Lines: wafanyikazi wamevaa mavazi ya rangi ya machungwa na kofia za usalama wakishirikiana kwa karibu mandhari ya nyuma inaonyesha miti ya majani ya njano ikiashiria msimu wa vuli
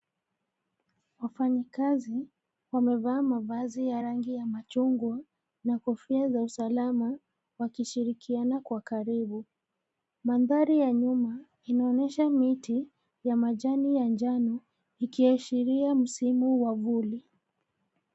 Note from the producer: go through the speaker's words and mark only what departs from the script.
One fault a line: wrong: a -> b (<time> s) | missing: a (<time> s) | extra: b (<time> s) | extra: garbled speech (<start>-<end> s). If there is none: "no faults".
no faults